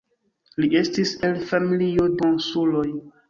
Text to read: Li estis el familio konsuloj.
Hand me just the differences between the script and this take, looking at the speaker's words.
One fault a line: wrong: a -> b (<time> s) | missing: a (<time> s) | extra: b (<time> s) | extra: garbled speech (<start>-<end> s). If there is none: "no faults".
no faults